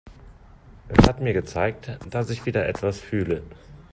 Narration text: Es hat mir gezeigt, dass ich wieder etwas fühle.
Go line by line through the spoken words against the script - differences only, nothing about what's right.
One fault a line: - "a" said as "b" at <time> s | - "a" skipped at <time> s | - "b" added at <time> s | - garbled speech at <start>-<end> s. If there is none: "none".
none